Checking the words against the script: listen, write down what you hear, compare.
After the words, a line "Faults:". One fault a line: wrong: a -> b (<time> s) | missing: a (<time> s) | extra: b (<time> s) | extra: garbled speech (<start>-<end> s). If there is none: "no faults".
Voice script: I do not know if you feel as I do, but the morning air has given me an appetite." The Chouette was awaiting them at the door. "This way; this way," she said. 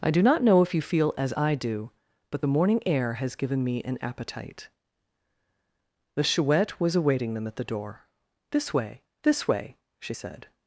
I do not know if you feel as I do, but the morning air has given me an appetite." The Chouette was awaiting them at the door. "This way; this way," she said.
Faults:
no faults